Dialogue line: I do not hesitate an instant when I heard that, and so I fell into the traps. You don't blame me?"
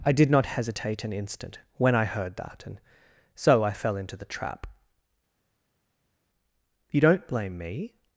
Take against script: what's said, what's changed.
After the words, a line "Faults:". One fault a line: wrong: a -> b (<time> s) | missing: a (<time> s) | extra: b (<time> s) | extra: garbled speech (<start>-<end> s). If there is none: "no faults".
I did not hesitate an instant when I heard that, and so I fell into the trap. You don't blame me?"
Faults:
wrong: do -> did (0.1 s)
wrong: traps -> trap (4.2 s)